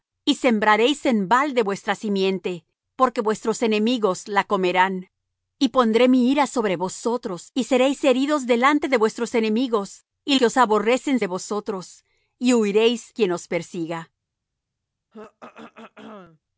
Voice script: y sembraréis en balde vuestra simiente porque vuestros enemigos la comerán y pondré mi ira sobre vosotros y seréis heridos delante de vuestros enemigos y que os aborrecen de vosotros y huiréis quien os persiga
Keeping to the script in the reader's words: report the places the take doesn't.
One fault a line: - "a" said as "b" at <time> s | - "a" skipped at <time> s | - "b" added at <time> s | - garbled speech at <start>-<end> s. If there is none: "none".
none